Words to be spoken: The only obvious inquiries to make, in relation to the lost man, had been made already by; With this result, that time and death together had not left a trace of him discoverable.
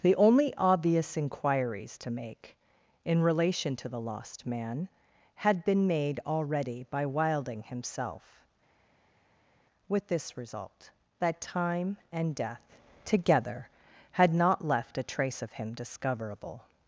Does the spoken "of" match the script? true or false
true